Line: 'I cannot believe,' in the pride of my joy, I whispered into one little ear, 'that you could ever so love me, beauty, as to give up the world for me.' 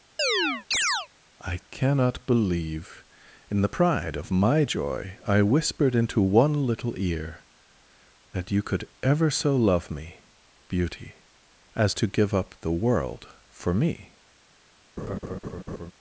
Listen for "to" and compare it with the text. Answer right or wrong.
right